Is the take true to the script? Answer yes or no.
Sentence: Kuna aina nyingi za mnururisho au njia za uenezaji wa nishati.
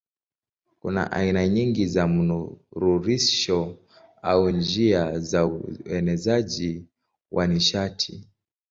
yes